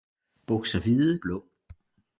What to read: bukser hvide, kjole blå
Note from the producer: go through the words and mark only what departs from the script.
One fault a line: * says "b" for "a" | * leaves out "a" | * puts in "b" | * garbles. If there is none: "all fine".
* leaves out "kjole"